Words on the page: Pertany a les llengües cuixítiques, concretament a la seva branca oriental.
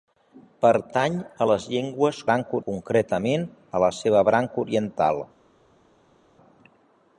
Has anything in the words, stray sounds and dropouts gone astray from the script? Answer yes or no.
yes